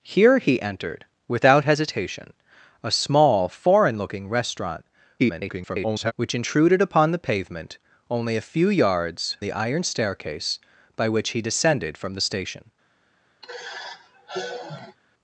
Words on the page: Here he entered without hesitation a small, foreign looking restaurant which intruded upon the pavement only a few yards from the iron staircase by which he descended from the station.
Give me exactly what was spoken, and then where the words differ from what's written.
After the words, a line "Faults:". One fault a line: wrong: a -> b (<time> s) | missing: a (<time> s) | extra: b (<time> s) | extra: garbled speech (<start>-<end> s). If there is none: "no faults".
Here he entered without hesitation a small, foreign looking restaurant [garbled] which intruded upon the pavement only a few yards the iron staircase by which he descended from the station.
Faults:
extra: garbled speech (5.2-6.1 s)
missing: from (9.4 s)